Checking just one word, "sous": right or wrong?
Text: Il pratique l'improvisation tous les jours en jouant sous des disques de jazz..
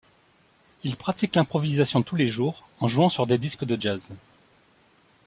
wrong